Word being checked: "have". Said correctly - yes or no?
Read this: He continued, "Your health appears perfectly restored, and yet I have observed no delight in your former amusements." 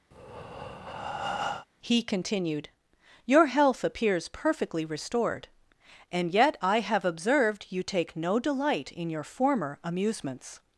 yes